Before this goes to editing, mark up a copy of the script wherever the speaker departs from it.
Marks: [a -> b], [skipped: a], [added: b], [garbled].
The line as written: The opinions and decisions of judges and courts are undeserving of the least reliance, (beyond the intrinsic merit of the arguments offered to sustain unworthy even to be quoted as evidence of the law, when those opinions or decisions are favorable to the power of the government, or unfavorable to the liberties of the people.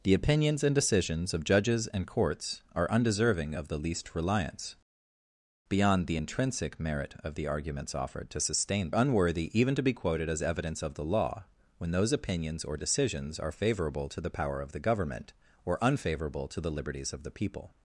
The opinions and decisions of judges and courts are undeserving of the least reliance, (beyond the intrinsic merit of the arguments offered to sustain unworthy even to be quoted as evidence of the law, when those opinions or decisions are favorable to the power of the government, or unfavorable to the liberties of the people.